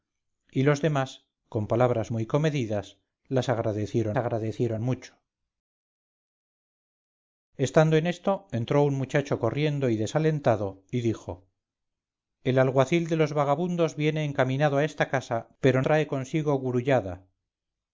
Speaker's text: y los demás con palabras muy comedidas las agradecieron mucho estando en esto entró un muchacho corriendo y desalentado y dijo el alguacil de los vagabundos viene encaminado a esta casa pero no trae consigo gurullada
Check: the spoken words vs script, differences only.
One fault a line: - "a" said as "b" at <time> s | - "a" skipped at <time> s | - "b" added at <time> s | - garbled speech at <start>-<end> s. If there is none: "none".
- "agradecieron" added at 4.2 s
- "no" skipped at 15.8 s